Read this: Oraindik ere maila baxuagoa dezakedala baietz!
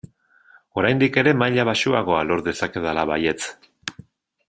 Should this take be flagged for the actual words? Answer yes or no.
yes